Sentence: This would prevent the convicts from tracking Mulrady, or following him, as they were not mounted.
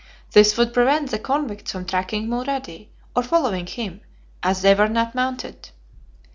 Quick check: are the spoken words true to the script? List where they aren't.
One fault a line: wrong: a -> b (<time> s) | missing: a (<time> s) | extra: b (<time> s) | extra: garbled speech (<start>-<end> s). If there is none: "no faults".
no faults